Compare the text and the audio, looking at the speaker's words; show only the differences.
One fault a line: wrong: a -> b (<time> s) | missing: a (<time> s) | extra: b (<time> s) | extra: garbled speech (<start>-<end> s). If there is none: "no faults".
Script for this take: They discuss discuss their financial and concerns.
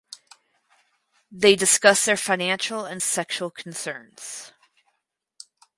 missing: discuss (2.0 s)
extra: sexual (3.0 s)